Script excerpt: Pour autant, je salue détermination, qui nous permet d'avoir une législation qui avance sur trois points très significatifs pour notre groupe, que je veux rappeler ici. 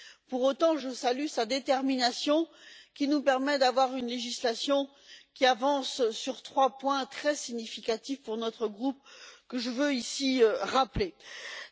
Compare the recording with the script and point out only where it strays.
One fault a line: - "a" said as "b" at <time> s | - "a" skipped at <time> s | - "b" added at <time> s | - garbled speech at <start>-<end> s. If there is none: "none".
- "sa" added at 1.3 s